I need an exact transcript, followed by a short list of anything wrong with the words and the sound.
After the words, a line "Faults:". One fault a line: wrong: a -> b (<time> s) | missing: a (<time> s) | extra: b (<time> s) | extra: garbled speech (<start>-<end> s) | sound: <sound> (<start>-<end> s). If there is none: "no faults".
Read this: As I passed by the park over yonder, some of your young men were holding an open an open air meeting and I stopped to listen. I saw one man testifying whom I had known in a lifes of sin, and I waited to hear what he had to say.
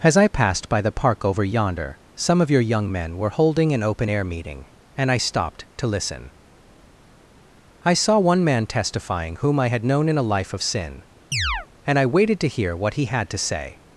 As I passed by the park over yonder, some of your young men were holding an open air meeting and I stopped to listen. I saw one man testifying whom I had known in a life of sin, and I waited to hear what he had to say.
Faults:
missing: an open (4.1 s)
wrong: lifes -> life (10.3 s)
sound: chirp (11.3-11.7 s)